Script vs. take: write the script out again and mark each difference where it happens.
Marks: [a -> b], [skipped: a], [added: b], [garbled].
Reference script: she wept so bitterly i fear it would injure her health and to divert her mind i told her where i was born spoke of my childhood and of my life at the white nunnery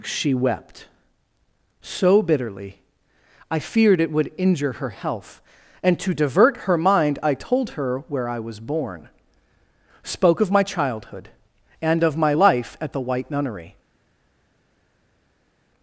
she wept so bitterly i [fear -> feared] it would injure her health and to divert her mind i told her where i was born spoke of my childhood and of my life at the white nunnery